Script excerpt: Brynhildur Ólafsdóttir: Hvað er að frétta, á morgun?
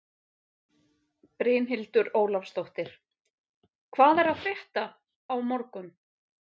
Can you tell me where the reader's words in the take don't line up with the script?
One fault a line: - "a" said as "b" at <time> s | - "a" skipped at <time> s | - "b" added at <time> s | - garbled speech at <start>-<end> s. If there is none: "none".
none